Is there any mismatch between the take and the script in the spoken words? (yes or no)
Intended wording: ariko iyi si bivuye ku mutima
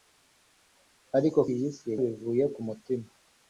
no